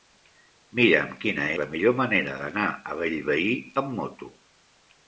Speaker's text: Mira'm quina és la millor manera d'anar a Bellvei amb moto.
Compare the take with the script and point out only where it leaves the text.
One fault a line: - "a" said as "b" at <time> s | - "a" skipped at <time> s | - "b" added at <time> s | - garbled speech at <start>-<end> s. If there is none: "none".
- "és" skipped at 1.4 s